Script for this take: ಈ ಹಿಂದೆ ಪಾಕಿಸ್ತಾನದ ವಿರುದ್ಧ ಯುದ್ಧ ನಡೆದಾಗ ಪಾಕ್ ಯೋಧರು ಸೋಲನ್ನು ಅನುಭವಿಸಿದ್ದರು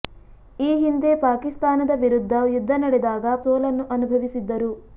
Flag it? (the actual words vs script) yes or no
yes